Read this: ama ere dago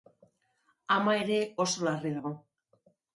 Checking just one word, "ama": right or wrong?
right